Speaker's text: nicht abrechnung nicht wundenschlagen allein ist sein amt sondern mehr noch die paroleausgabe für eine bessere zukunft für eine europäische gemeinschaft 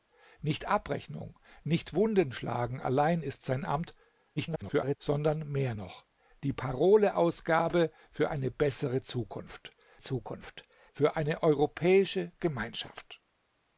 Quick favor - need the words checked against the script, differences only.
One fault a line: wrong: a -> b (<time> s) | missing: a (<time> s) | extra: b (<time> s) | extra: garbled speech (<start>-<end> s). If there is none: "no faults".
extra: garbled speech (4.4-5.0 s)
extra: zukunft (10.0 s)